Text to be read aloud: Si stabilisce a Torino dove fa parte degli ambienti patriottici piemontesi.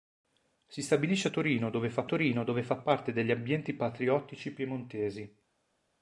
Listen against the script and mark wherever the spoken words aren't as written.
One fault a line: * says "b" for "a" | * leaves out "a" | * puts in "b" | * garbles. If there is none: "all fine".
* puts in "Torino dove fa"